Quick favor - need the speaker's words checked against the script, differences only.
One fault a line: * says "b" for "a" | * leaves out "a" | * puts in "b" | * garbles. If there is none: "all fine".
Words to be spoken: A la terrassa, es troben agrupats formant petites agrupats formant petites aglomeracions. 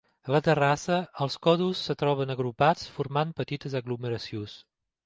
* puts in "els còdols"
* leaves out "agrupats formant petites"